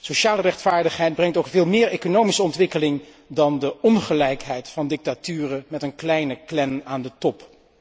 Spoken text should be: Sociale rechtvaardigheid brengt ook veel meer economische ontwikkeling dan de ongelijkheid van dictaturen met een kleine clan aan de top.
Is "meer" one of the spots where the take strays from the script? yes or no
no